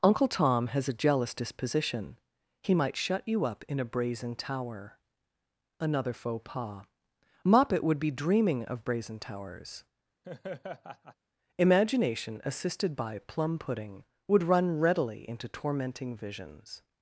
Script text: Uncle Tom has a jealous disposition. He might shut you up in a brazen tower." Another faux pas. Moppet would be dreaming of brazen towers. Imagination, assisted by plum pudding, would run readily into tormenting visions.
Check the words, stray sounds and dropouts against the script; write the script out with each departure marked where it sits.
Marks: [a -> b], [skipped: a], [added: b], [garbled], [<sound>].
Uncle Tom has a jealous disposition. He might shut you up in a brazen tower." Another faux pas. Moppet would be dreaming of brazen towers. [laugh] Imagination, assisted by plum pudding, would run readily into tormenting visions.